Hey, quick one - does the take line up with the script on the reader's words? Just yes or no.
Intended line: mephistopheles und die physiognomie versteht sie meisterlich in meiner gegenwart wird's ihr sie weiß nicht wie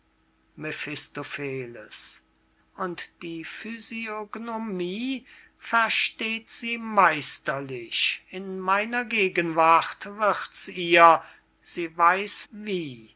no